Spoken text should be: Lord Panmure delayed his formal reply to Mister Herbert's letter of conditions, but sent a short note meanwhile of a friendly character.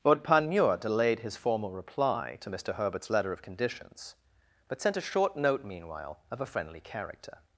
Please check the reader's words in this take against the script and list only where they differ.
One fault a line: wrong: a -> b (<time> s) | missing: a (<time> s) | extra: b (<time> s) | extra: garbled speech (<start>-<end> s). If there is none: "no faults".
no faults